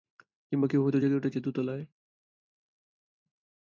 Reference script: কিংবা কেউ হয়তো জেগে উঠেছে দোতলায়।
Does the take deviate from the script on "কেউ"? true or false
false